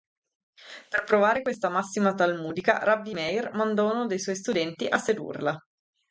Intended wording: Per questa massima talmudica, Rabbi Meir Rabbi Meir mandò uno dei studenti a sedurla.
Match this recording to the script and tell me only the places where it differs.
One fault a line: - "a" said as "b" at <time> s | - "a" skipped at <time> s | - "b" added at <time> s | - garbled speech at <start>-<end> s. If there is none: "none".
- "provare" added at 1.0 s
- "Rabbi Meir" skipped at 3.5 s
- "suoi" added at 4.2 s